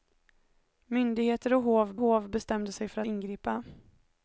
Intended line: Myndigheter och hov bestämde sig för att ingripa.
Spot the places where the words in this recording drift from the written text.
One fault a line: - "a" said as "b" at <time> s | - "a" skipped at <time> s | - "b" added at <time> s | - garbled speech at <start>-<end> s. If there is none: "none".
- "hov" added at 2.0 s
- "att" skipped at 3.0 s